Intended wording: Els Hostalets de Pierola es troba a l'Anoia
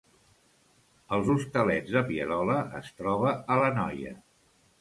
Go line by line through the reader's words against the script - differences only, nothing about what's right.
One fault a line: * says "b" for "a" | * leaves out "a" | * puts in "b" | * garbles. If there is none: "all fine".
all fine